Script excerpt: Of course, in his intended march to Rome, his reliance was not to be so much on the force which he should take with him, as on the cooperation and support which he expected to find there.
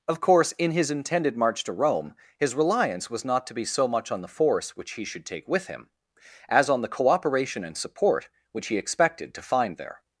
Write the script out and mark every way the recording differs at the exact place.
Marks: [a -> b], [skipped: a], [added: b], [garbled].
Of course, in his intended march to Rome, his reliance was not to be so much on the force which he should take with him, as on the cooperation and support which he expected to find there.